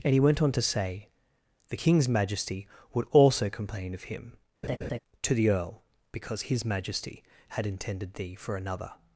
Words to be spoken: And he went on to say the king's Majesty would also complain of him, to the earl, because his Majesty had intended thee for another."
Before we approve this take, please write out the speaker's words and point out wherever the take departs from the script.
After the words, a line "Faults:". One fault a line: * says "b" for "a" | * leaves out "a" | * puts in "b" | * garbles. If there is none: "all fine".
And he went on to say the king's Majesty would also complain of him, to the earl, because his Majesty had intended thee for another."
Faults:
all fine